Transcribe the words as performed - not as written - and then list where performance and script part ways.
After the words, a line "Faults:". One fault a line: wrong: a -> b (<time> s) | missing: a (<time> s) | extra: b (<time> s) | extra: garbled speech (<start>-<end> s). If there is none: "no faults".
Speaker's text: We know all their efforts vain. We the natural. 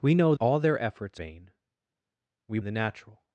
We know all their efforts vain. We the natural.
Faults:
no faults